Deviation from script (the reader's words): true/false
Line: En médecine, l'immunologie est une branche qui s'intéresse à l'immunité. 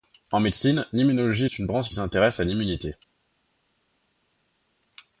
false